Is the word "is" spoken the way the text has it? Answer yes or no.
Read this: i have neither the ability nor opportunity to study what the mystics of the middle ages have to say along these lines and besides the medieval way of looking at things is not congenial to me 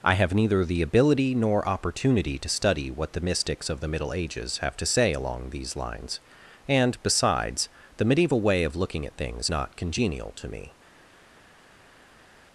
no